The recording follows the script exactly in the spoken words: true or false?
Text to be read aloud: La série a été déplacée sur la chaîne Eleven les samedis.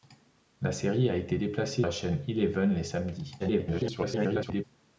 false